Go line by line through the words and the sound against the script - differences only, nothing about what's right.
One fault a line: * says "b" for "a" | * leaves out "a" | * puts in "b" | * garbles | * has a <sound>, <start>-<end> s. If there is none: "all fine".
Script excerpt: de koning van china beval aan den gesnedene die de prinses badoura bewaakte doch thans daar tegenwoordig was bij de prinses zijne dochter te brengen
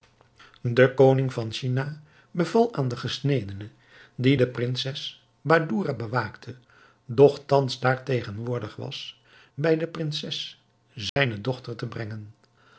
* has a dropout, 11.1-11.2 s